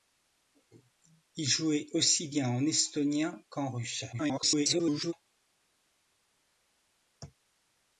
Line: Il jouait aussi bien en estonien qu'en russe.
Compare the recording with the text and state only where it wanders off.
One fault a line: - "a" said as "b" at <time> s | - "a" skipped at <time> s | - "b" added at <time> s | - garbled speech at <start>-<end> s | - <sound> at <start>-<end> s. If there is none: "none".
- garbled speech at 4.1-5.1 s